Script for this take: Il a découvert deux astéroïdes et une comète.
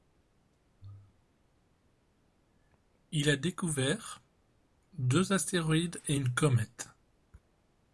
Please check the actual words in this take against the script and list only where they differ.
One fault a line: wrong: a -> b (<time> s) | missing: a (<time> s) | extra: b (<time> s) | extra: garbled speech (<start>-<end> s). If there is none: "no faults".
no faults